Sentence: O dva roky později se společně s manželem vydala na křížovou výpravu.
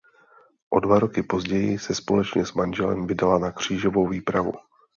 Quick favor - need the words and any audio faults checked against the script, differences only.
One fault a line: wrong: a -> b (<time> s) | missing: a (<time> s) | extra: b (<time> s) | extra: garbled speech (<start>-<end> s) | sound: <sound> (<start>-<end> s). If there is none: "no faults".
no faults